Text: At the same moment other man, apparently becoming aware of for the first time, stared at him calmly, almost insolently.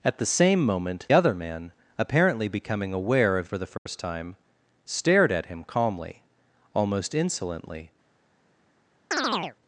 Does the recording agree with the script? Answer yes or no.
yes